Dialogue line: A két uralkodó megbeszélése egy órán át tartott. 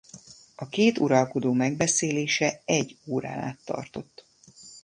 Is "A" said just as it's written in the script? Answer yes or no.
yes